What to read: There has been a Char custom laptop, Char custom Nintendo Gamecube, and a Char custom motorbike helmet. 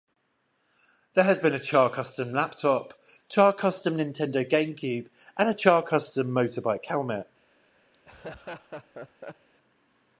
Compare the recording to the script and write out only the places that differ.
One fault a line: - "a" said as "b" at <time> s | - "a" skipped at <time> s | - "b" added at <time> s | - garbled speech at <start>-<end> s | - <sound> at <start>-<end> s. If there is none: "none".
- laugh at 7.9-9.5 s